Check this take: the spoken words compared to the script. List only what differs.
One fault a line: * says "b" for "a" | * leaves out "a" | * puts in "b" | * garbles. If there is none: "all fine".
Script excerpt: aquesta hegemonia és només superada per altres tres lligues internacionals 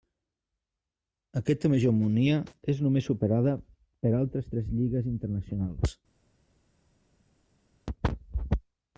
all fine